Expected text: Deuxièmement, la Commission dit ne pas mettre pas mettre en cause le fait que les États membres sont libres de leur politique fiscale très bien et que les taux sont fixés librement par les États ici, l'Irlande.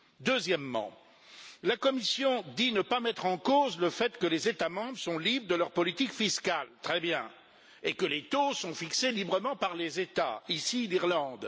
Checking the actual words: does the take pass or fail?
fail